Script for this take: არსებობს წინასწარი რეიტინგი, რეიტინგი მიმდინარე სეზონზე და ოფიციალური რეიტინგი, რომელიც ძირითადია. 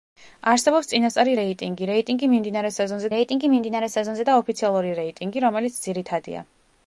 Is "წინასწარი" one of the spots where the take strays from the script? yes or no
no